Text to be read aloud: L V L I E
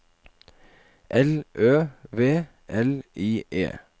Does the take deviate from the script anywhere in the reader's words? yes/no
yes